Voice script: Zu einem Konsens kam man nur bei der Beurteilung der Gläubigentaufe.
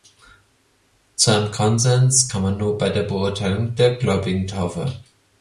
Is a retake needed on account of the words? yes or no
no